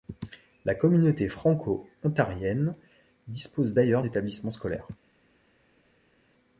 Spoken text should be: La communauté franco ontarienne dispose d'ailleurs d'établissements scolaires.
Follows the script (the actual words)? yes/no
yes